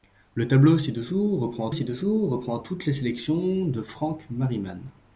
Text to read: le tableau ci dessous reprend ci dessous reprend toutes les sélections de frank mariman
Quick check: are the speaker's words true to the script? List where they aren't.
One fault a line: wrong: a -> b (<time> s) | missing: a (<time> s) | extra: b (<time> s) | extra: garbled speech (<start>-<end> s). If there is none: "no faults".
no faults